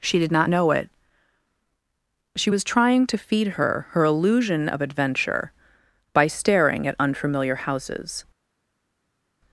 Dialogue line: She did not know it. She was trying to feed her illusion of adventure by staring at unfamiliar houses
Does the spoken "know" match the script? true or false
true